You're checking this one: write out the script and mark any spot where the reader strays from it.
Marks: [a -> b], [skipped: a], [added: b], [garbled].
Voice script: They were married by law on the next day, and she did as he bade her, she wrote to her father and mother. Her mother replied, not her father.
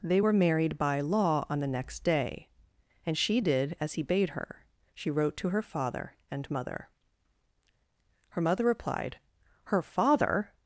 They were married by law on the next day, and she did as he bade her, she wrote to her father and mother. Her mother replied, [skipped: not] her father.